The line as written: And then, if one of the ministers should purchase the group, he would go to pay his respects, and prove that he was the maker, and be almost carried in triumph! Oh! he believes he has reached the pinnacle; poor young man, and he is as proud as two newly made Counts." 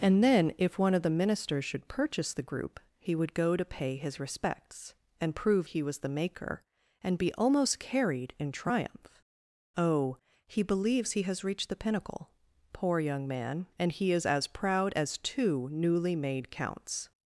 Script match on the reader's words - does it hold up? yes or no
no